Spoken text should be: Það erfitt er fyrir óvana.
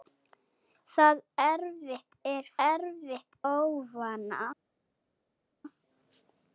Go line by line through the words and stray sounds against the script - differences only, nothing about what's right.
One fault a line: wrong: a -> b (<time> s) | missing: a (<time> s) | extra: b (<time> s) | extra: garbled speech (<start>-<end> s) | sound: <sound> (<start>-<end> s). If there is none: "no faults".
wrong: fyrir -> erfitt (2.6 s)